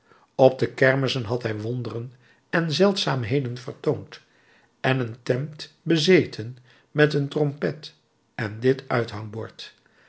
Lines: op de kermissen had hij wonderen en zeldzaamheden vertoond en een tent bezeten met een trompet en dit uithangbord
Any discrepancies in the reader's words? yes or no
no